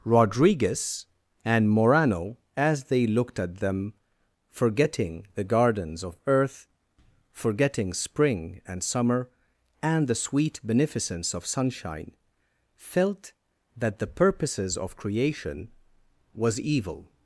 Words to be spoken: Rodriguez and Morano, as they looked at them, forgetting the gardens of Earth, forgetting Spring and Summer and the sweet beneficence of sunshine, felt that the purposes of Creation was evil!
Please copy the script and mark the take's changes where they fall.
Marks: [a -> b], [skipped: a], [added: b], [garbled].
Rodriguez and Morano, as they looked at them, forgetting the gardens of Earth, forgetting Spring and Summer and the sweet beneficence of sunshine, felt that the purposes of Creation was evil!